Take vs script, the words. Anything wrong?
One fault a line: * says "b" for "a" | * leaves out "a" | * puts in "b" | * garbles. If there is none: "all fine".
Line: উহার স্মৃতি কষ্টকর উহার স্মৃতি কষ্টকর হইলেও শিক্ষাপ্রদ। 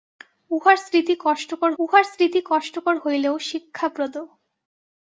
all fine